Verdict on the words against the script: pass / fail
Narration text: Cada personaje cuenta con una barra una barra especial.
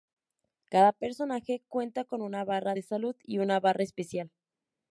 fail